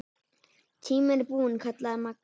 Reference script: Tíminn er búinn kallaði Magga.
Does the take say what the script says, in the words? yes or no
yes